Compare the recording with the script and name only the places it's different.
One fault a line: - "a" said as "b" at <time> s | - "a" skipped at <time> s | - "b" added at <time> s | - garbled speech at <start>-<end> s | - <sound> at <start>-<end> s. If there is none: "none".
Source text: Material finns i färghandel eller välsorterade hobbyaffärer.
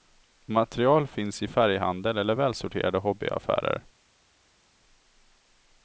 none